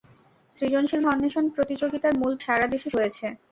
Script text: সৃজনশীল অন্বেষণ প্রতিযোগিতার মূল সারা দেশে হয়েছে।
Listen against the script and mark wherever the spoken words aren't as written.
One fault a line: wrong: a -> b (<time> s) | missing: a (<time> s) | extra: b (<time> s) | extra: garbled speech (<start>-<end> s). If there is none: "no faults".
no faults